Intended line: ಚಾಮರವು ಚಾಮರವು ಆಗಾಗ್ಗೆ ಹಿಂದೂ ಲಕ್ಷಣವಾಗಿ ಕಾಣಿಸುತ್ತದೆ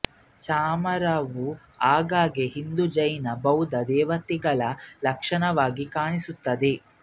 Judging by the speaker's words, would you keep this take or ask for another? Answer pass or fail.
fail